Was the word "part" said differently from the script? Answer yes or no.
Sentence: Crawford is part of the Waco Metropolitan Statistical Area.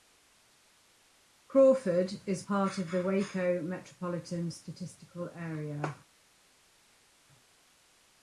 no